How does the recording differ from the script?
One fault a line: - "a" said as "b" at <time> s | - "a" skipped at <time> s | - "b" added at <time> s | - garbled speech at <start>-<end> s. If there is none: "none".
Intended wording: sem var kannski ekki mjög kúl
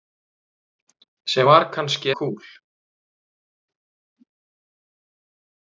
- "ekki mjög" skipped at 2.1 s